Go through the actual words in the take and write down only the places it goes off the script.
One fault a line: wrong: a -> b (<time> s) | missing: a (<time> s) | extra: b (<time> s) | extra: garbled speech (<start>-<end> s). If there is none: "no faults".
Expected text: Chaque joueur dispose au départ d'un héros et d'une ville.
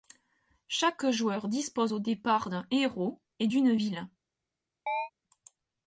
no faults